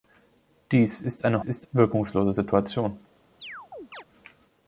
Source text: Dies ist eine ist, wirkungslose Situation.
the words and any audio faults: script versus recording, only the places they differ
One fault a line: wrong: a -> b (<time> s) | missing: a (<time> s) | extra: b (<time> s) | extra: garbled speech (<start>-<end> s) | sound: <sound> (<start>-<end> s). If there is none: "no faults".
sound: chirp (3.4-4.0 s)